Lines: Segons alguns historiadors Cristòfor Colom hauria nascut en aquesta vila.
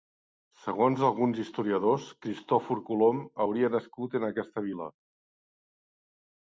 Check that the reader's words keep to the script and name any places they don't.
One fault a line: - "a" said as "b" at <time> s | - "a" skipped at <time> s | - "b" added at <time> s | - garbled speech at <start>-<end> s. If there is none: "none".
none